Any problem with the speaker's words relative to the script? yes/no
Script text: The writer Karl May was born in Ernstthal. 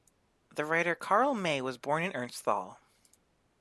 no